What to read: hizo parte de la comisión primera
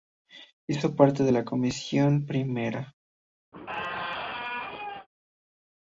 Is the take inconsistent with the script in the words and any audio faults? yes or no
yes